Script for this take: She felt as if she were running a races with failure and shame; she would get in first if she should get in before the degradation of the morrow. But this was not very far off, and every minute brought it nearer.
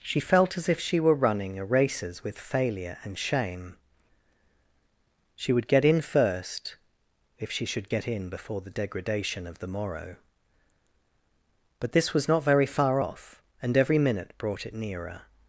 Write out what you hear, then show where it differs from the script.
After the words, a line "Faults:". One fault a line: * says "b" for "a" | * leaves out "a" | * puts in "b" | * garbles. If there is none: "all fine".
She felt as if she were running a races with failure and shame; she would get in first if she should get in before the degradation of the morrow. But this was not very far off, and every minute brought it nearer.
Faults:
all fine